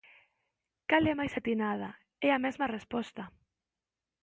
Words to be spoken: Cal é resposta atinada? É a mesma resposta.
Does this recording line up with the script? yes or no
no